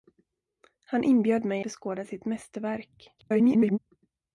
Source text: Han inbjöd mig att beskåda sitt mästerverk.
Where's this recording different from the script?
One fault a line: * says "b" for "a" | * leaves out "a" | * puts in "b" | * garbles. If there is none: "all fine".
* leaves out "att"
* garbles